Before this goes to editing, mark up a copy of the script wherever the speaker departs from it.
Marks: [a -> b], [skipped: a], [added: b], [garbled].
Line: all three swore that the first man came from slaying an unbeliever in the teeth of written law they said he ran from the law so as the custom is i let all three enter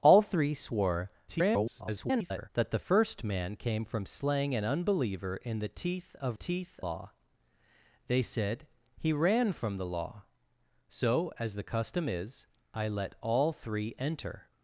all three swore [garbled] that the first man came from slaying an unbeliever in the teeth of [written -> teeth] law they said he ran from the law so as the custom is i let all three enter